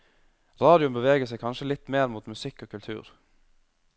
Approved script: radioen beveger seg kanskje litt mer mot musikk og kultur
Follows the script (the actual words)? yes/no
yes